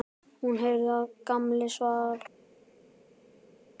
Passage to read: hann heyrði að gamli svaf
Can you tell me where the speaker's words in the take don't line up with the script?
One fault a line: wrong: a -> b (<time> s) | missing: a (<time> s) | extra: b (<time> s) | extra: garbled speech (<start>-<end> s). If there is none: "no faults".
wrong: hann -> hún (0.5 s)